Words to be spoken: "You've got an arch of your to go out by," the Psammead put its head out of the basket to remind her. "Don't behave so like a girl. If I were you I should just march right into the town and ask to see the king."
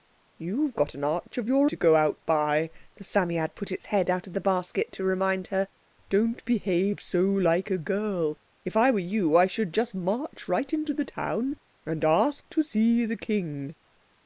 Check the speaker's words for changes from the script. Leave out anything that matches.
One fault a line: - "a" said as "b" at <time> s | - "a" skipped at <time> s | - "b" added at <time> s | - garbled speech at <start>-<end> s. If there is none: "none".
none